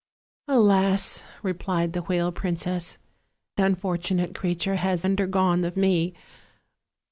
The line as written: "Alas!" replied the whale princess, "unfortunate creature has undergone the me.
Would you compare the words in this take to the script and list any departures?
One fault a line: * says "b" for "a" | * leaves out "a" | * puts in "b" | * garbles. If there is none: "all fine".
all fine